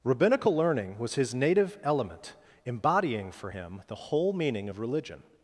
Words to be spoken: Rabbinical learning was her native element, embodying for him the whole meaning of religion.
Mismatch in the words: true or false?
true